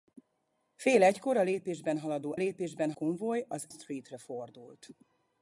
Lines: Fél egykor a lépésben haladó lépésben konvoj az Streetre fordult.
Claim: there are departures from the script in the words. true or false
false